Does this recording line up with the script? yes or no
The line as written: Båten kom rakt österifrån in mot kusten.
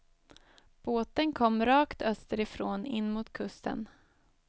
yes